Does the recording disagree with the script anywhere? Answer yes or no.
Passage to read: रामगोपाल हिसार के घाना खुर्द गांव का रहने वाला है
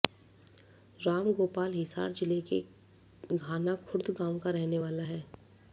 yes